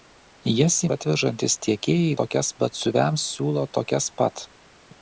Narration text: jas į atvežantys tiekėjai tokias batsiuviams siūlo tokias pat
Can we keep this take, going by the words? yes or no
yes